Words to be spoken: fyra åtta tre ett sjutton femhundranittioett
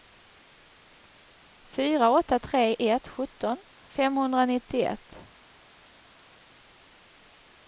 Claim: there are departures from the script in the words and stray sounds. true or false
false